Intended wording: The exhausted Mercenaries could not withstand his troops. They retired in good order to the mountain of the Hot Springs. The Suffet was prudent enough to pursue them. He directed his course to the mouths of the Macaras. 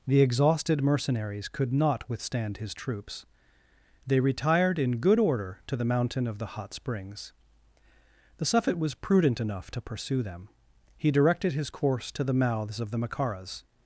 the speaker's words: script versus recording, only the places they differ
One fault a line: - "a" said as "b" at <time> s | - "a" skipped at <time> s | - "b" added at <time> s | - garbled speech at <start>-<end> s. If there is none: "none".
none